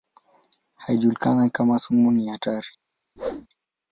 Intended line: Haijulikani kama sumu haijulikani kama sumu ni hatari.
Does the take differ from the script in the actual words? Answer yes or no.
yes